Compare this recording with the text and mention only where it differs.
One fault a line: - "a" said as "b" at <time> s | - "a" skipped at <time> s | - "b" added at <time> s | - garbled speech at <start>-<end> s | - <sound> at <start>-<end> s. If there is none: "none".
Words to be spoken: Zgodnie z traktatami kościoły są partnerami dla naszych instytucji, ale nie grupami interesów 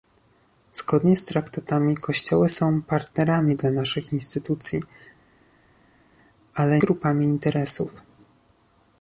- "nie" skipped at 6.8 s